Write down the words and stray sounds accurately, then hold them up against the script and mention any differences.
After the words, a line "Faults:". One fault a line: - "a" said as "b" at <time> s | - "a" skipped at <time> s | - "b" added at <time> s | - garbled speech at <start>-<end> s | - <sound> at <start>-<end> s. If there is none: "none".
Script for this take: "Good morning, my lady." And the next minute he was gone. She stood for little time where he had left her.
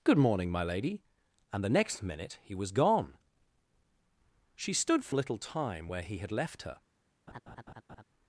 "Good morning, my lady." And the next minute he was gone. She stood for little time where he had left her.
Faults:
- laugh at 7.3-8.0 s